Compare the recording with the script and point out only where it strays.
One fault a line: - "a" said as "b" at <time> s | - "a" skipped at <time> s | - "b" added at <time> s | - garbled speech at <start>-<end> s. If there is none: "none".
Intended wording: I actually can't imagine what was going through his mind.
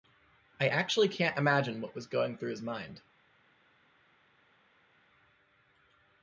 none